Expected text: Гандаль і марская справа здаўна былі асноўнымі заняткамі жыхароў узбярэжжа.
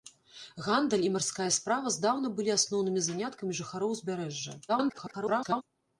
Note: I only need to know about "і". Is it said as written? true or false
true